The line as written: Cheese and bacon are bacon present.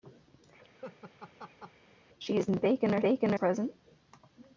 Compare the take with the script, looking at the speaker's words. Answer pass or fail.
pass